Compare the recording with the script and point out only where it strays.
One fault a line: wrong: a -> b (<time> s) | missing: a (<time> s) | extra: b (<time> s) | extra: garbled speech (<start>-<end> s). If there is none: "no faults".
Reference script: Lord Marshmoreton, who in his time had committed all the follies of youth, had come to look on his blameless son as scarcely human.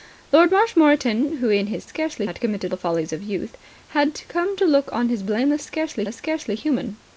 wrong: time -> scarcely (1.9 s)
missing: all (2.7 s)
wrong: son -> scarcely (5.6 s)